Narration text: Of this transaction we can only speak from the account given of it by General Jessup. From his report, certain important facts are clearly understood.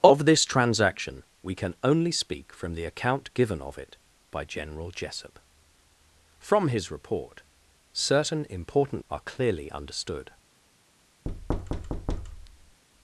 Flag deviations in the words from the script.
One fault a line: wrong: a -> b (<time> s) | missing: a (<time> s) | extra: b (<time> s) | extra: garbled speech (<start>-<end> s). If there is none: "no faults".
missing: facts (9.0 s)